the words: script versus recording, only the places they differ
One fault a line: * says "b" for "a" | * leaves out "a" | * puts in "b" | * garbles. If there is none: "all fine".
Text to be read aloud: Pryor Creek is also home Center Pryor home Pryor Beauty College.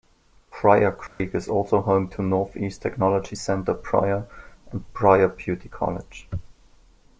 * puts in "to Northeast Technology"
* says "and" for "home"